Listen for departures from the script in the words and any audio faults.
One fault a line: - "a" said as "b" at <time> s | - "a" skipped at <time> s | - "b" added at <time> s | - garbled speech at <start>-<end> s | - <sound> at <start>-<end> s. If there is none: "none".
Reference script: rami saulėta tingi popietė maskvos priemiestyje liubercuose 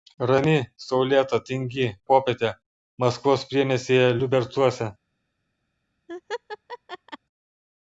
- laugh at 6.1-7.2 s